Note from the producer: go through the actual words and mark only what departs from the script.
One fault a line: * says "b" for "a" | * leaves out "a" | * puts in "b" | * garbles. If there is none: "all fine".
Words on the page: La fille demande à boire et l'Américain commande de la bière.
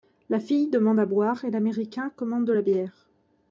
all fine